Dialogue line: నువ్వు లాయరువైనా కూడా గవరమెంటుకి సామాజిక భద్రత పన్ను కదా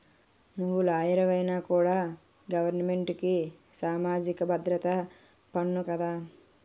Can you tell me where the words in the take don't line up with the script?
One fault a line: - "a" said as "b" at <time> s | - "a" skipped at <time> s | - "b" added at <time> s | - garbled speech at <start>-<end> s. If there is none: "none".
none